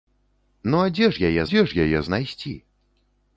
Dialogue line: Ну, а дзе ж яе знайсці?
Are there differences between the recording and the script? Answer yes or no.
yes